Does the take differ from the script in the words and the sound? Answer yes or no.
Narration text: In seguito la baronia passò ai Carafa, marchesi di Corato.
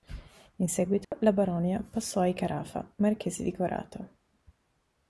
yes